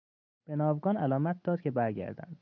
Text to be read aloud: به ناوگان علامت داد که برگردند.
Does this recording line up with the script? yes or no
yes